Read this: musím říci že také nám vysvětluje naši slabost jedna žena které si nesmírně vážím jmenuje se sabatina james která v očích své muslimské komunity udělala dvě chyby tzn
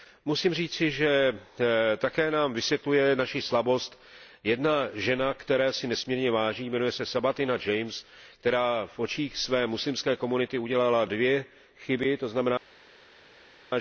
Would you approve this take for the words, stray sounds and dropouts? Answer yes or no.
yes